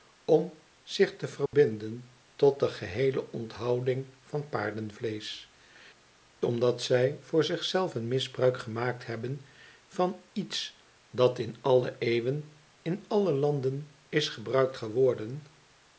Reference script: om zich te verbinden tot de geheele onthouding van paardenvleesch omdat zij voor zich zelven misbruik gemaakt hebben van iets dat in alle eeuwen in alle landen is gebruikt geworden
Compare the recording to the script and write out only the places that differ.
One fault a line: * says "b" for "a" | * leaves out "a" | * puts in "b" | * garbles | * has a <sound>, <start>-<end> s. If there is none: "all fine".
* has a dropout, 1.5-1.5 s